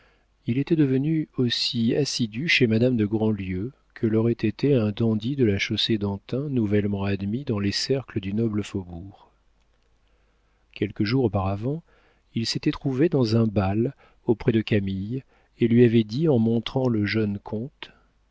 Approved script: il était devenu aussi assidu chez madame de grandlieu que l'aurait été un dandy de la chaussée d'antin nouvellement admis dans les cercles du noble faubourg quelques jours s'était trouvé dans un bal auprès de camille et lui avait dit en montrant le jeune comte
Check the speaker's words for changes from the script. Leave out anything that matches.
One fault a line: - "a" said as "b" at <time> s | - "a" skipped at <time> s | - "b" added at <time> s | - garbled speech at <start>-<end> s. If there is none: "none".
- "auparavant il" added at 11.3 s